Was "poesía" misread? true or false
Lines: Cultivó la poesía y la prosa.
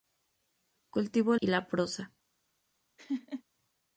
true